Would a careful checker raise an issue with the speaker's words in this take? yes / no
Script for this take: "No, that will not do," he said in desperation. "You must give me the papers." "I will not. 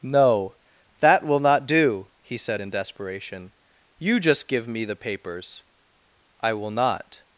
yes